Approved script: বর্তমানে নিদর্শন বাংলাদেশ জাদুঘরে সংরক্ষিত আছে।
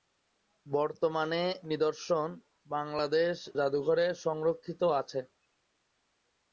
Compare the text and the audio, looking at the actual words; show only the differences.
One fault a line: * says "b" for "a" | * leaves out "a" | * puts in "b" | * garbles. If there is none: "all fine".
all fine